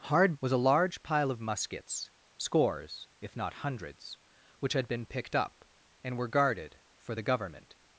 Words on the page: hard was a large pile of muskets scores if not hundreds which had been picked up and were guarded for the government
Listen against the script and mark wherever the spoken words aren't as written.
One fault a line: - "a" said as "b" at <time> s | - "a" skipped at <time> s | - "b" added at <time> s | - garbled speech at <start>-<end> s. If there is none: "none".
none